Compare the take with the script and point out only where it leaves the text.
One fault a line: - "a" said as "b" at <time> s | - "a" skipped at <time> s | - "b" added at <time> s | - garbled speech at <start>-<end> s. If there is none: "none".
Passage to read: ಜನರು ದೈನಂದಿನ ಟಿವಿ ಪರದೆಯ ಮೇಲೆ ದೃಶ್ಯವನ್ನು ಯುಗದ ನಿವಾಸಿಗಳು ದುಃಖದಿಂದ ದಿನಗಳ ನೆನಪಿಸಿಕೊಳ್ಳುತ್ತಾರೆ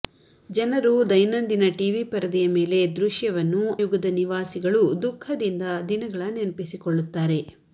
none